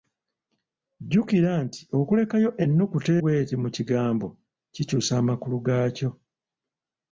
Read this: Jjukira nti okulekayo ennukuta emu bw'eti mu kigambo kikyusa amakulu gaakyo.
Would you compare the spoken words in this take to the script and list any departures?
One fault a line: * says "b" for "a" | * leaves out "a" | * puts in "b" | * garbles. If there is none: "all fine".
* leaves out "emu"